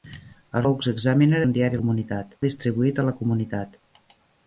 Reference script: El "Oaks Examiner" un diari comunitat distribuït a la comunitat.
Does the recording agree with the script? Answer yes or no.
yes